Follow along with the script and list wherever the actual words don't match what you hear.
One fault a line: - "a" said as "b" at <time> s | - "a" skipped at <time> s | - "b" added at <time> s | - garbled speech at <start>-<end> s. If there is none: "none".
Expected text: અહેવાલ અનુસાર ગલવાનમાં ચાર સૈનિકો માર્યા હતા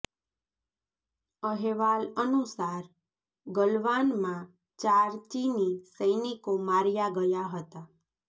- "ચીની" added at 5.3 s
- "ગયા" added at 7.2 s